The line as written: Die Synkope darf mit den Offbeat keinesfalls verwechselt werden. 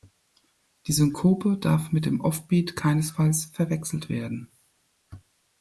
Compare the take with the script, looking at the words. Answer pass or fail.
fail